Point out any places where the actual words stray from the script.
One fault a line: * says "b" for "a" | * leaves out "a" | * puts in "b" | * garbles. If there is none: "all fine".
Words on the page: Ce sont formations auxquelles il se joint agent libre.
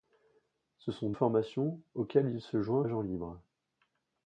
all fine